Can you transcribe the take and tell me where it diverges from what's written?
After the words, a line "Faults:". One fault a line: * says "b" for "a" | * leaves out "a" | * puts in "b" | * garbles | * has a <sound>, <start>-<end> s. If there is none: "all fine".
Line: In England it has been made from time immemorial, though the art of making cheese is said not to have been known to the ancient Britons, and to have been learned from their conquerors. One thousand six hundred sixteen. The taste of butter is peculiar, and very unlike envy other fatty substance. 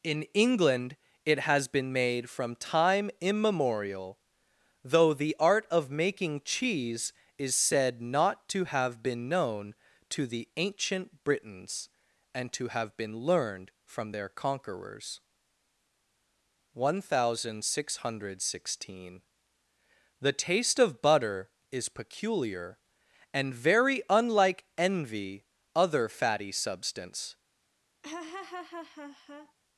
In England it has been made from time immemorial, though the art of making cheese is said not to have been known to the ancient Britons, and to have been learned from their conquerors. One thousand six hundred sixteen. The taste of butter is peculiar, and very unlike envy other fatty substance.
Faults:
* has a laugh, 28.0-29.5 s